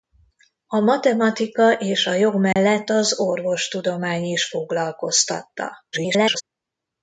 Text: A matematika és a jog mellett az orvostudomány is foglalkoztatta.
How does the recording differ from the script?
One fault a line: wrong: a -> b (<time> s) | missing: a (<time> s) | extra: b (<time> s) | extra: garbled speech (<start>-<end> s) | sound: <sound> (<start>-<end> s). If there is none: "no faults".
sound: dropout (2.5-2.6 s)
extra: garbled speech (5.9-6.4 s)